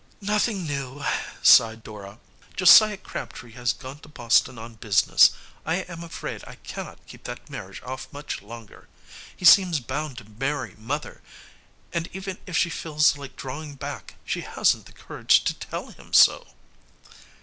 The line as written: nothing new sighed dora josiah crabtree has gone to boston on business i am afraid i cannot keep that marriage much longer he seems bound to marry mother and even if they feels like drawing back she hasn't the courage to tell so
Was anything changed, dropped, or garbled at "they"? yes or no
yes